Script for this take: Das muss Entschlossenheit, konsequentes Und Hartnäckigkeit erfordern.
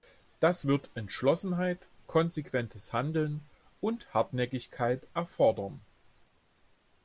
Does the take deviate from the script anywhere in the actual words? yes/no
yes